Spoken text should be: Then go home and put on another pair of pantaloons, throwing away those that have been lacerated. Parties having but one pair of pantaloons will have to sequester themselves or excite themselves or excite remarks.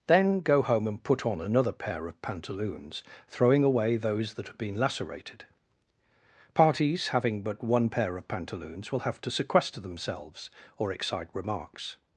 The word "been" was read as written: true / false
true